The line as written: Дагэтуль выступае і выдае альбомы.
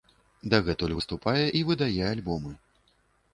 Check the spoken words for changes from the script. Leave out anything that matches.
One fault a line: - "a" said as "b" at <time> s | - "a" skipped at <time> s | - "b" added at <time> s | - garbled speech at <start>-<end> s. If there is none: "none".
none